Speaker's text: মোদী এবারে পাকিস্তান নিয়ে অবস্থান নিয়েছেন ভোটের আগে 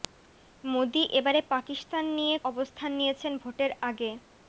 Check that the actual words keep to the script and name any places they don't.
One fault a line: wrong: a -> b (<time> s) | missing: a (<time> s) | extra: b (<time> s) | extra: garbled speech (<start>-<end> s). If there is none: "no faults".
no faults